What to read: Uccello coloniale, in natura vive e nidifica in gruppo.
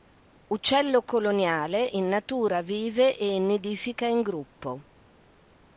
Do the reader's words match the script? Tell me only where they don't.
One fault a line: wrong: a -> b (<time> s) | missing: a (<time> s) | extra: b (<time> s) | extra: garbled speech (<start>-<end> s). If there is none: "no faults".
no faults